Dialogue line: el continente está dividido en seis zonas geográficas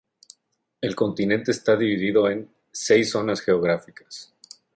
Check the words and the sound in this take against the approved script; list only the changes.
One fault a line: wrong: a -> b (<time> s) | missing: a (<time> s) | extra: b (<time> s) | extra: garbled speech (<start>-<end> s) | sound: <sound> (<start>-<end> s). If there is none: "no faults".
no faults